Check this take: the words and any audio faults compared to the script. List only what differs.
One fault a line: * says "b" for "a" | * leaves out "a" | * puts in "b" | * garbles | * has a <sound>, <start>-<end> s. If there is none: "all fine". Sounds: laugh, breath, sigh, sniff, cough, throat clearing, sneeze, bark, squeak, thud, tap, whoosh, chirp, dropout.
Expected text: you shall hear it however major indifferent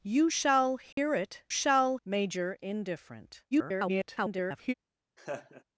* has a dropout, 0.9-1.0 s
* says "shall" for "however"
* garbles
* has a laugh, 5.2-5.6 s